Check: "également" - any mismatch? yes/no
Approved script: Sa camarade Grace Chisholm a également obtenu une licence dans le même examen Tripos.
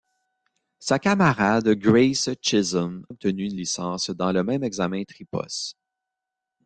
yes